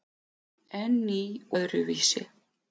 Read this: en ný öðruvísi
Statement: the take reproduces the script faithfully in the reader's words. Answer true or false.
true